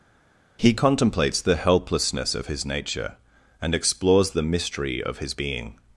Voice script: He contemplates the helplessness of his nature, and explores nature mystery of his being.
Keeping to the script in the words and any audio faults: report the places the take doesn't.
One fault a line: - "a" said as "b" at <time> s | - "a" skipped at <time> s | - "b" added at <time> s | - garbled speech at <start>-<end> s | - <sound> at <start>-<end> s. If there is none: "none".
- "nature" said as "the" at 4.3 s